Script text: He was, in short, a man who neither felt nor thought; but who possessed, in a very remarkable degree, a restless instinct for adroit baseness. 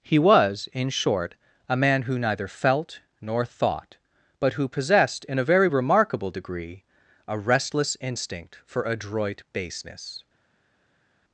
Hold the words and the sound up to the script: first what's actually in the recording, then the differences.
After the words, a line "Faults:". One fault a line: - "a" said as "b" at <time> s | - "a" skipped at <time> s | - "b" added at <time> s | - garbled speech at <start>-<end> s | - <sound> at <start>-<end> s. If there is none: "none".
He was, in short, a man who neither felt nor thought; but who possessed, in a very remarkable degree, a restless instinct for adroit baseness.
Faults:
none